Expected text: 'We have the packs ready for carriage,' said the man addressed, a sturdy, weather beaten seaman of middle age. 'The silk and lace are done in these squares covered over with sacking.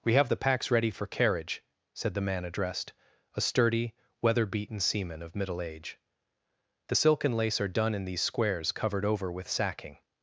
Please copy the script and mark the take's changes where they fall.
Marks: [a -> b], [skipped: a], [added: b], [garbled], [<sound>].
'We have the packs ready for carriage,' said the man addressed, a sturdy, weather beaten seaman of middle age. 'The silk and lace are done in these squares covered over with sacking.